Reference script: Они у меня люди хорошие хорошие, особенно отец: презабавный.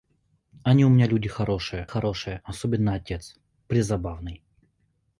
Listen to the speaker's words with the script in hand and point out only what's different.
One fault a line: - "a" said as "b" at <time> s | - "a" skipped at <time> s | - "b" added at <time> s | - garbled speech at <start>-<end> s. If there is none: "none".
none